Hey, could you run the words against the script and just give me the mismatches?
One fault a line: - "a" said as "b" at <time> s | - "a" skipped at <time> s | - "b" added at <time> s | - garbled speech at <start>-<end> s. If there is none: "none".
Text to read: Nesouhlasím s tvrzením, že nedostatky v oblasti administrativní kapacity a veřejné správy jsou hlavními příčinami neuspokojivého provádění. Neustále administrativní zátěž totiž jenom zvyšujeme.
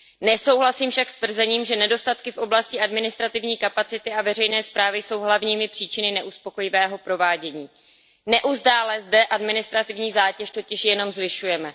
- "však" added at 0.9 s
- "zde" added at 9.0 s